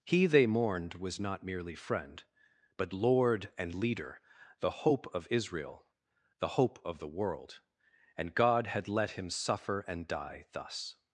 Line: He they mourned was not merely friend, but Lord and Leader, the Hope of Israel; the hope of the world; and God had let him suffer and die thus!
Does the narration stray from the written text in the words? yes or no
no